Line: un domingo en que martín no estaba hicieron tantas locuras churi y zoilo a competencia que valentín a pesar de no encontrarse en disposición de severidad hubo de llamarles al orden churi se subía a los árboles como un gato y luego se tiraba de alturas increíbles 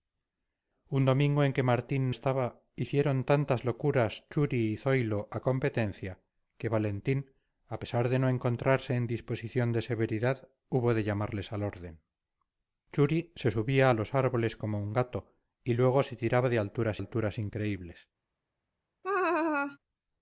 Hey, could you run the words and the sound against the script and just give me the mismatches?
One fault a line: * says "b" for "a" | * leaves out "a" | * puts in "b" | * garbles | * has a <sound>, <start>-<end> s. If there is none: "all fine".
* leaves out "no"
* puts in "alturas"
* has a laugh, 19.0-19.8 s